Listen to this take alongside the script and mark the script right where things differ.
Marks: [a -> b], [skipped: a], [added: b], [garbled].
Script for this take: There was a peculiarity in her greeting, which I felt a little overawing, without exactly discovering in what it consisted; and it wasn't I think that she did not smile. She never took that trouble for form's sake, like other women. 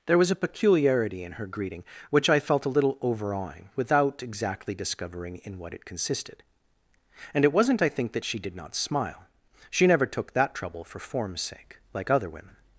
There was a peculiarity in her greeting, which I felt a little overawing, without exactly discovering in what it consisted; and it wasn't I think that she did not smile. She never took that trouble for form's sake, like other women.